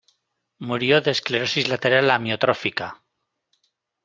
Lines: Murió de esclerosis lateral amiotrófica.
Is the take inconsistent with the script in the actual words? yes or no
no